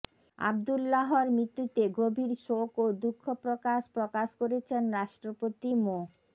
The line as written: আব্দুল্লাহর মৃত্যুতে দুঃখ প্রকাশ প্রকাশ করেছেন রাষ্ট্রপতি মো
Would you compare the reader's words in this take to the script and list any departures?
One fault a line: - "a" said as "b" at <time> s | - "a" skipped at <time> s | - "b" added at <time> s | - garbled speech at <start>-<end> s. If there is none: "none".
- "গভীর শোক ও" added at 2.0 s